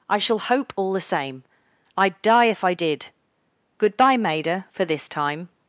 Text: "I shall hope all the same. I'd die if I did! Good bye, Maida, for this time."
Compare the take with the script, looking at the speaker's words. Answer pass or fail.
pass